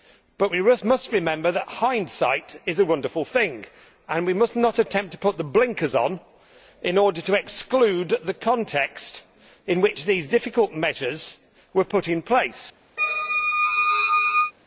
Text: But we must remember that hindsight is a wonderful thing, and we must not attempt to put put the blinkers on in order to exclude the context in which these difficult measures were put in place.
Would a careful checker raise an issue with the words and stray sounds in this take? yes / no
yes